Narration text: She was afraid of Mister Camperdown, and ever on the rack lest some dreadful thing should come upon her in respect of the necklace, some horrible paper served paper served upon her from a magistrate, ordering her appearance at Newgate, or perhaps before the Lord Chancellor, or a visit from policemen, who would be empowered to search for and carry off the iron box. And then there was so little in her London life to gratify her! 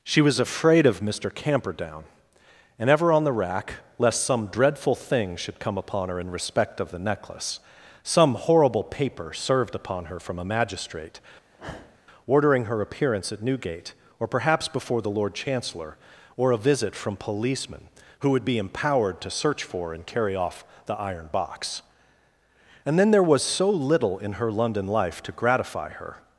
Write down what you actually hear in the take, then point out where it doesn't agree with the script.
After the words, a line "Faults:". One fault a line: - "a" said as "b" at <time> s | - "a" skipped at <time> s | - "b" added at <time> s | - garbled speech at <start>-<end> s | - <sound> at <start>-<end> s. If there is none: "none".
She was afraid of Mister Camperdown, and ever on the rack lest some dreadful thing should come upon her in respect of the necklace, some horrible paper served upon her from a magistrate, ordering her appearance at Newgate, or perhaps before the Lord Chancellor, or a visit from policemen, who would be empowered to search for and carry off the iron box. And then there was so little in her London life to gratify her!
Faults:
- "paper served" skipped at 9.8 s
- sniff at 11.5-12.0 s